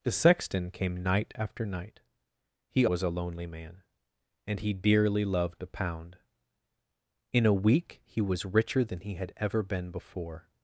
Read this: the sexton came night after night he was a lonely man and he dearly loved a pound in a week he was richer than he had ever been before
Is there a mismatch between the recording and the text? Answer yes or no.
no